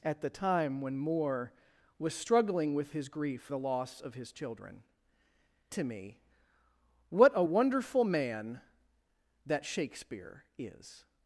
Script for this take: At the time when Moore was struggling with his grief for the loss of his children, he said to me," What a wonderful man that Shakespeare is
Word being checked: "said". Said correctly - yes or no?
no